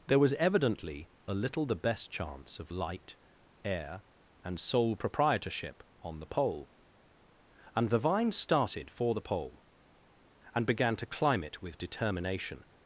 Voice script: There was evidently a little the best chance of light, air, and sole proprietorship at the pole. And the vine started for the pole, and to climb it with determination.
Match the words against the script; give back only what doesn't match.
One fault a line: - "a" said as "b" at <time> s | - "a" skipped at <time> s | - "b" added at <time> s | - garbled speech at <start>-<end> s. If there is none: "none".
- "at" said as "on" at 6.0 s
- "began" added at 10.6 s